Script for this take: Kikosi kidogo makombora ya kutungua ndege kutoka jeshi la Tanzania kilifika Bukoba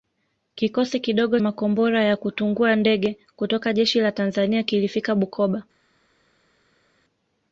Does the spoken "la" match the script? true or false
true